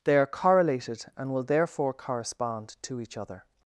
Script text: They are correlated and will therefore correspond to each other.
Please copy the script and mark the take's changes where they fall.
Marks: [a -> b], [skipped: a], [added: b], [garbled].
They are correlated and will therefore correspond to each other.